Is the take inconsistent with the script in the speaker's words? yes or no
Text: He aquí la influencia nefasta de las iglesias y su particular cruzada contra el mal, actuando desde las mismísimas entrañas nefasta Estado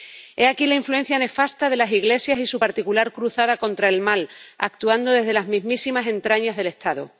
yes